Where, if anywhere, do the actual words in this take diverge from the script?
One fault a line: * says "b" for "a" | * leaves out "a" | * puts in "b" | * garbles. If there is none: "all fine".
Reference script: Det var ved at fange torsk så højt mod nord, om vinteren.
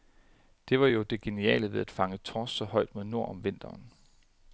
* puts in "jo det geniale"